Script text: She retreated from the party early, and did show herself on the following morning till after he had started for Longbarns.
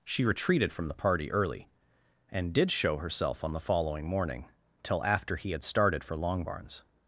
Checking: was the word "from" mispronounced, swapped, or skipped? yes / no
no